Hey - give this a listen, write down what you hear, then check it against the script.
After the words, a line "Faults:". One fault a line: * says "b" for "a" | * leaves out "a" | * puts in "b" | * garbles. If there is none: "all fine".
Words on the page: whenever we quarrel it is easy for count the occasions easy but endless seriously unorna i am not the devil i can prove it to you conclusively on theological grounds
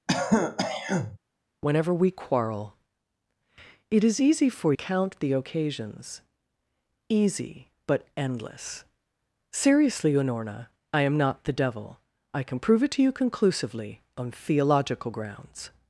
whenever we quarrel it is easy for count the occasions easy but endless seriously unorna i am not the devil i can prove it to you conclusively on theological grounds
Faults:
all fine